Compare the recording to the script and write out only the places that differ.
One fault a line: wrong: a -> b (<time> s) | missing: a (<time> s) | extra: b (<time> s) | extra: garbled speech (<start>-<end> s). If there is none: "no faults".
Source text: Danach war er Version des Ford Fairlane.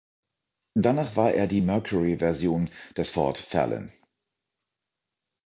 extra: die Mercury (1.4 s)